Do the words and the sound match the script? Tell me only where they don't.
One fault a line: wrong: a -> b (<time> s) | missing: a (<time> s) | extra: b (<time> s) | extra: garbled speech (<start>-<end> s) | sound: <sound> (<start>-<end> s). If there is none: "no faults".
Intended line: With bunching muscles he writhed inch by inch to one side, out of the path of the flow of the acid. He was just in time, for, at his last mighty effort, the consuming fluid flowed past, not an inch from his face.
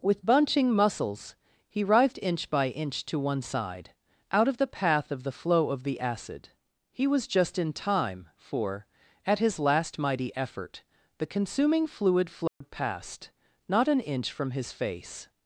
sound: dropout (12.5-12.6 s)